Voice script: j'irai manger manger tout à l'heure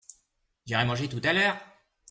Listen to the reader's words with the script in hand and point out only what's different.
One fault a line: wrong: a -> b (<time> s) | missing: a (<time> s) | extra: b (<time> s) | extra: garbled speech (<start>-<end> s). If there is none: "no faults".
missing: manger (1.1 s)